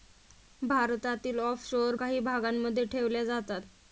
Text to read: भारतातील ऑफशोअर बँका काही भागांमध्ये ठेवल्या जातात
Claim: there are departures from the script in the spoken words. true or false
true